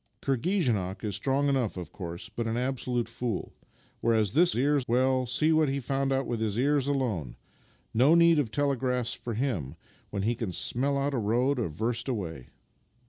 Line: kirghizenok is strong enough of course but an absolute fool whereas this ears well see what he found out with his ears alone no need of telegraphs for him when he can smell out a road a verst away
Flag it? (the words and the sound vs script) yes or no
no